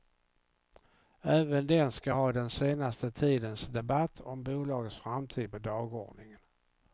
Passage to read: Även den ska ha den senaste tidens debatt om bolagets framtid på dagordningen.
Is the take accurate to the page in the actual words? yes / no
yes